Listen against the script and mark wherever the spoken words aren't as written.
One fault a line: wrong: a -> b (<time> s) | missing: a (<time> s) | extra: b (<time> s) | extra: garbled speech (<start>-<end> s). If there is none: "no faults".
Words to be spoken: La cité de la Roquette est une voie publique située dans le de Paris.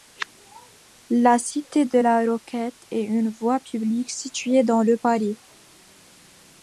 no faults